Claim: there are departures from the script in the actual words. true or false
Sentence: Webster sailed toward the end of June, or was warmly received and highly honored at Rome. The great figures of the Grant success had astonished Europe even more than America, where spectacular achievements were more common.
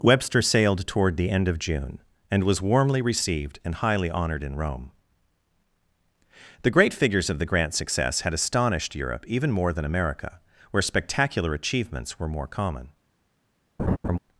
true